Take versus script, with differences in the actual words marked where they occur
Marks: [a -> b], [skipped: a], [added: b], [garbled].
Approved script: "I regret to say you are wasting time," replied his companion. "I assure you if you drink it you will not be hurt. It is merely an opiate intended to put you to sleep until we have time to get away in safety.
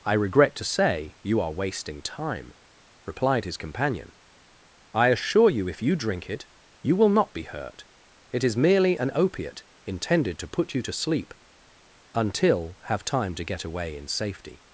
"I regret to say you are wasting time," replied his companion. "I assure you if you drink it you will not be hurt. It is merely an opiate intended to put you to sleep until [skipped: we] have time to get away in safety.